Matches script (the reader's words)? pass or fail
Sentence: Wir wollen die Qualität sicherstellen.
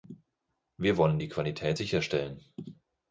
pass